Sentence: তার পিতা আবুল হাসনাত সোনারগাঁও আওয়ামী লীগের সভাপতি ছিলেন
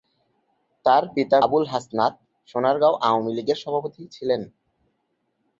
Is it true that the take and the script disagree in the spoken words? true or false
false